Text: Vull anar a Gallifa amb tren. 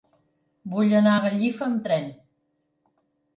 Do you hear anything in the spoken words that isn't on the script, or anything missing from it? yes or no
no